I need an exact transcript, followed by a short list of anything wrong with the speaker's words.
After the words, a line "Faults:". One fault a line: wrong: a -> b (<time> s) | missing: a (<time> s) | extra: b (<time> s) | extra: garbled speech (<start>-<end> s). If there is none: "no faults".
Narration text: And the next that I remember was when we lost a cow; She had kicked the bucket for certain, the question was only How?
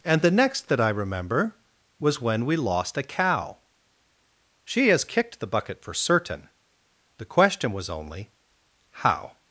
And the next that I remember was when we lost a cow; She has kicked the bucket for certain, the question was only How?
Faults:
wrong: had -> has (4.9 s)